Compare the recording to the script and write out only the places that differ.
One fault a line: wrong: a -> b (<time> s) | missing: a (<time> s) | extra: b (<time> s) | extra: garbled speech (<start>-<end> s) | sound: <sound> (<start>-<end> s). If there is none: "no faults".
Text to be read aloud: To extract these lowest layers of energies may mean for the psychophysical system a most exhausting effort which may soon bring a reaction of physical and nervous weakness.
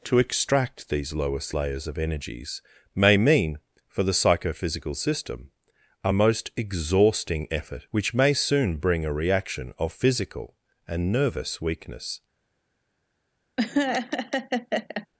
sound: laugh (13.6-15.1 s)